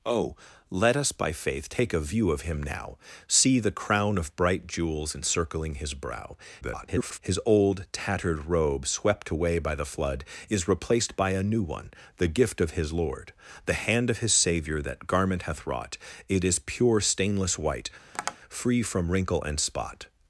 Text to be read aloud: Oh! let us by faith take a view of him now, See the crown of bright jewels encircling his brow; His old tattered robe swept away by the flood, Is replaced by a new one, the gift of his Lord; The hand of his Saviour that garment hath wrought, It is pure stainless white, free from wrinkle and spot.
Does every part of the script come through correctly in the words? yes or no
no